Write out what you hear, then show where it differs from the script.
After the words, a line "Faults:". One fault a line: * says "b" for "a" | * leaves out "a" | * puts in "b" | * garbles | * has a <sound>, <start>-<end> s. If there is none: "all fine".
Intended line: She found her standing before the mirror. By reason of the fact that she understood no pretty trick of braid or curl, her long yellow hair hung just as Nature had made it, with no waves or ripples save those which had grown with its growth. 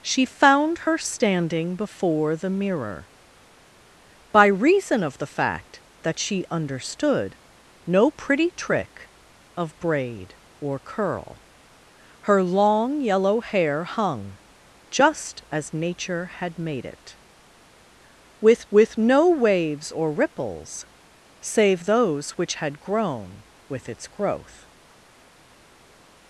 She found her standing before the mirror. By reason of the fact that she understood no pretty trick of braid or curl, her long yellow hair hung just as Nature had made it, with with no waves or ripples save those which had grown with its growth.
Faults:
* puts in "with"